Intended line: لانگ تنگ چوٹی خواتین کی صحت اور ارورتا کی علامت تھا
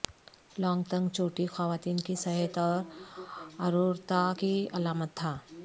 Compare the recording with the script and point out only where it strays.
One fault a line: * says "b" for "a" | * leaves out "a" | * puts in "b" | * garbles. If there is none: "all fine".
all fine